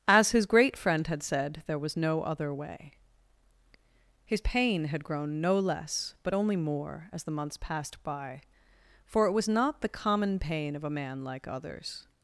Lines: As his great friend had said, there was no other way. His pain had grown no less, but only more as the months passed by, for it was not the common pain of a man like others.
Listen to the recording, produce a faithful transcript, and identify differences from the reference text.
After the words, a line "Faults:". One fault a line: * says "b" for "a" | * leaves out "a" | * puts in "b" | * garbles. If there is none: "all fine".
As his great friend had said, there was no other way. His pain had grown no less, but only more as the months passed by, for it was not the common pain of a man like others.
Faults:
all fine